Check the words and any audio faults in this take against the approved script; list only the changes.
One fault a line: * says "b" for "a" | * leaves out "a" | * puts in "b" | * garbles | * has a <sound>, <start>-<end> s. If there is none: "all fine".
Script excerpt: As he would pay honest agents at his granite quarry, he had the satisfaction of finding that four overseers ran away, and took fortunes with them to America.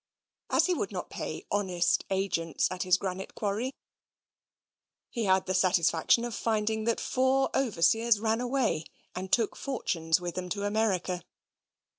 * puts in "not"